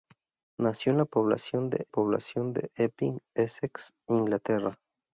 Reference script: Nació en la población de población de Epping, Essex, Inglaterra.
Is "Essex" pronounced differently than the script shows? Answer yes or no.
no